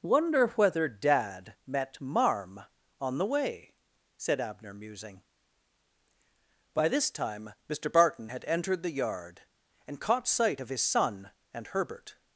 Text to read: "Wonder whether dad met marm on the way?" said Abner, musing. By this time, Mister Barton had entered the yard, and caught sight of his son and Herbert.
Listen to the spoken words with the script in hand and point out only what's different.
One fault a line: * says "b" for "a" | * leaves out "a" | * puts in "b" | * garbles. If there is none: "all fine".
all fine